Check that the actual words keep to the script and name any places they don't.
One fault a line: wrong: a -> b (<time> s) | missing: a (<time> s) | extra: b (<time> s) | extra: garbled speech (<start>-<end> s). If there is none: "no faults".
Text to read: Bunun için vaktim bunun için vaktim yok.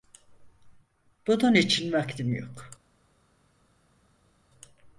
missing: bunun için vaktim (2.3 s)